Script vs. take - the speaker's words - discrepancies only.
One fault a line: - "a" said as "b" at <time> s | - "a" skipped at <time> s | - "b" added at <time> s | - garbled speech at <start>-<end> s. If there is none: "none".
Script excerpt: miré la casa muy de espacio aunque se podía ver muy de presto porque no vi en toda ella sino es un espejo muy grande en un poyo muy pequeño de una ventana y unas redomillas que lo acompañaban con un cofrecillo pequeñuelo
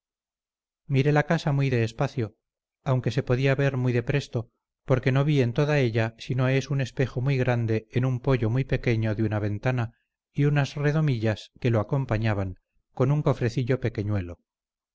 none